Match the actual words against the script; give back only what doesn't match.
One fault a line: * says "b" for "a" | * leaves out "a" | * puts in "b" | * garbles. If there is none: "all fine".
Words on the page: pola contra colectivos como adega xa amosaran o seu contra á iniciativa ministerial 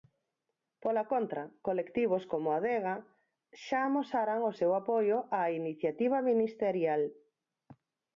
* says "apoio" for "contra"